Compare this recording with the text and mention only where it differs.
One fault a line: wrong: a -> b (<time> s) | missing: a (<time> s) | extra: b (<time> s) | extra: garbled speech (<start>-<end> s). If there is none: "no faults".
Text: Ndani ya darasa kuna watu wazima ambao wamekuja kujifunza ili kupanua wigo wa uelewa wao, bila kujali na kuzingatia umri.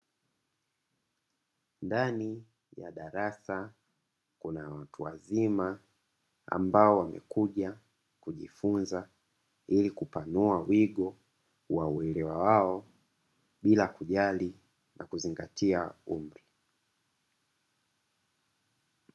no faults